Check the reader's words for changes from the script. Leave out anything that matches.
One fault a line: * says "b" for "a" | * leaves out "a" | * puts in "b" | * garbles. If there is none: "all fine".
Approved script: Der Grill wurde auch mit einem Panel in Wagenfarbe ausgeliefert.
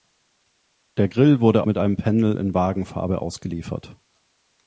* leaves out "auch"